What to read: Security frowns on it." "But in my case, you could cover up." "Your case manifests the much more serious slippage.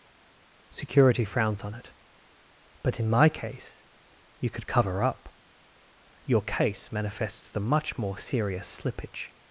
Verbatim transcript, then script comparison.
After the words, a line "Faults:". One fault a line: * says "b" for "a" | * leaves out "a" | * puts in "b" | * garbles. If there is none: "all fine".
Security frowns on it." "But in my case, you could cover up." "Your case manifests the much more serious slippage.
Faults:
all fine